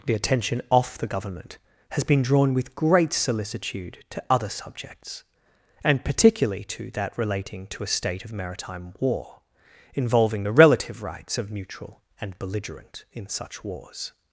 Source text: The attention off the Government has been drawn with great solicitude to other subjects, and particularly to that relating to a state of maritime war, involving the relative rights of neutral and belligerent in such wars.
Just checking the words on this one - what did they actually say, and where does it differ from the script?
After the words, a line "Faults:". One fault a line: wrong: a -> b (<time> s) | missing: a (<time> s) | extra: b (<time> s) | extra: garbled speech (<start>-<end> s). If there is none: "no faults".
The attention off the Government has been drawn with great solicitude to other subjects, and particularly to that relating to a state of maritime war, involving the relative rights of neutral and belligerent in such wars.
Faults:
no faults